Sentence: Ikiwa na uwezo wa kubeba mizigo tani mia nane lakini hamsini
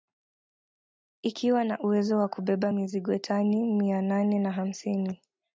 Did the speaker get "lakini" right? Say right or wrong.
wrong